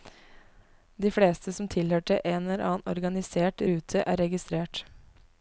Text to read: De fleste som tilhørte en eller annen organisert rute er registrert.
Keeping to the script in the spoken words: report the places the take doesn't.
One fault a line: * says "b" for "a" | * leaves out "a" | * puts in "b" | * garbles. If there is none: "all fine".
all fine